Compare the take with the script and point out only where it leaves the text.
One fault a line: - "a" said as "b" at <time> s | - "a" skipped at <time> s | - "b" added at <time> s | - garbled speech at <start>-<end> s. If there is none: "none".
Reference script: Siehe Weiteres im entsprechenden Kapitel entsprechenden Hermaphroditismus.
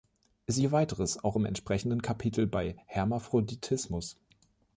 - "auch" added at 1.2 s
- "entsprechenden" said as "bei" at 2.5 s